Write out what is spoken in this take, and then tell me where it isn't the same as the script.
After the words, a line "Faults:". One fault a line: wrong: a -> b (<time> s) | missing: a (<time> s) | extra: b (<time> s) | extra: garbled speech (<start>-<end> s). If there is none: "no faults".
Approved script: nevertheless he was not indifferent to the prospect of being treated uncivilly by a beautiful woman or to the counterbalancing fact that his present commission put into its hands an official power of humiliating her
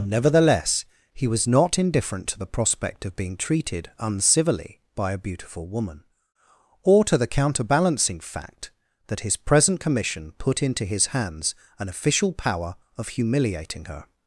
nevertheless he was not indifferent to the prospect of being treated uncivilly by a beautiful woman or to the counterbalancing fact that his present commission put into his hands an official power of humiliating her
Faults:
wrong: its -> his (10.9 s)